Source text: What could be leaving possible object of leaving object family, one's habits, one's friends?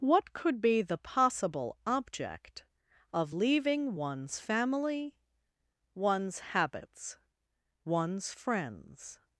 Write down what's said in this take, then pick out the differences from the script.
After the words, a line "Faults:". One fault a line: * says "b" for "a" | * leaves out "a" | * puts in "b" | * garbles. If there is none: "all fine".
What could be the possible object of leaving one's family, one's habits, one's friends?
Faults:
* says "the" for "leaving"
* says "one's" for "object"